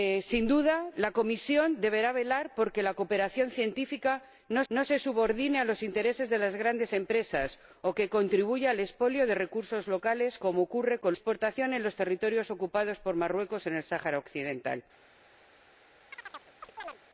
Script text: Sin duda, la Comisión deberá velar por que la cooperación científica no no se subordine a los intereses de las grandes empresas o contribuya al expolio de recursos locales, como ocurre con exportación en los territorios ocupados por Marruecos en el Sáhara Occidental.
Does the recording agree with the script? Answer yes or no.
yes